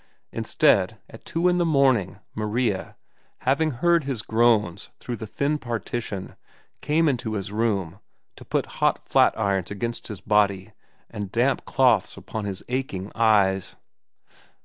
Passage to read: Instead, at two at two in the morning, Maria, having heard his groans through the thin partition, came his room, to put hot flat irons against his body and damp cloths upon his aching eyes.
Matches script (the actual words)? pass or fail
fail